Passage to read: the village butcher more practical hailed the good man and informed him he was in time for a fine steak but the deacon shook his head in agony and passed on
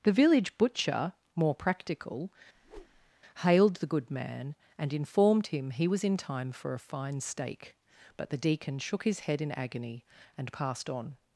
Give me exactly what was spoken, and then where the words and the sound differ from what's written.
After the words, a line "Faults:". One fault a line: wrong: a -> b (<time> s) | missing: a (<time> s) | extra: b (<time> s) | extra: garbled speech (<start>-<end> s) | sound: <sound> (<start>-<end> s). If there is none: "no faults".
the village butcher more practical hailed the good man and informed him he was in time for a fine steak but the deacon shook his head in agony and passed on
Faults:
sound: whoosh (2.6-3.1 s)